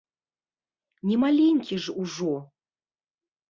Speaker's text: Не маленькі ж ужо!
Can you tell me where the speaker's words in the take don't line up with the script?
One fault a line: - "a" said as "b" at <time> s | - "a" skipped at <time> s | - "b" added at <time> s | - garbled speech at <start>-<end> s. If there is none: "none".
none